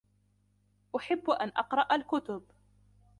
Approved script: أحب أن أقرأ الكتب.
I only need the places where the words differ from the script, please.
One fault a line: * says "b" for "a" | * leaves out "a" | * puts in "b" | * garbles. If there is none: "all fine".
all fine